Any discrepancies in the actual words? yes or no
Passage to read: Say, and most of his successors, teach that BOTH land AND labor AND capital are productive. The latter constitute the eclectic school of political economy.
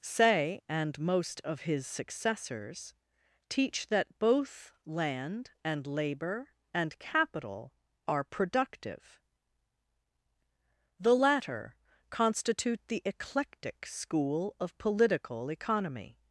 no